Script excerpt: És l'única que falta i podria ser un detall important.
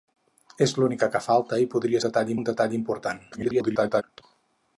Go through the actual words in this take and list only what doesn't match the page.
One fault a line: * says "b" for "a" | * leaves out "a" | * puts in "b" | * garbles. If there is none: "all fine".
* says "detall" for "ser"
* garbles